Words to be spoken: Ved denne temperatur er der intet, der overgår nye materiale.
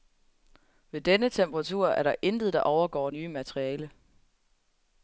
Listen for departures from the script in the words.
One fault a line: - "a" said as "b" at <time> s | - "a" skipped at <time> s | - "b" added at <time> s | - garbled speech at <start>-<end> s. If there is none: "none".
none